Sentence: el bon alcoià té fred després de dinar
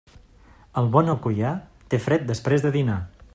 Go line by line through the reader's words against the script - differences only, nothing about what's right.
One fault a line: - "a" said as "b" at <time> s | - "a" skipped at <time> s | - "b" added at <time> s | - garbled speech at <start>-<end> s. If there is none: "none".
none